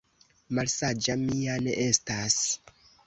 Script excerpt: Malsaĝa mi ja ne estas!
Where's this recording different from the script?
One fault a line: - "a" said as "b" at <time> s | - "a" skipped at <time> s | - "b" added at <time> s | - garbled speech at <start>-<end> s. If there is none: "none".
none